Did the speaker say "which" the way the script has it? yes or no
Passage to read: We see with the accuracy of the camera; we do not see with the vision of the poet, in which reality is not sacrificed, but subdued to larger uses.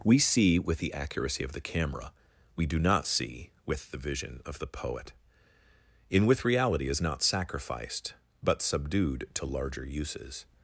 no